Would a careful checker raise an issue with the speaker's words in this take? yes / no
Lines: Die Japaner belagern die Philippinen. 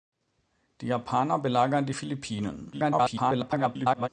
yes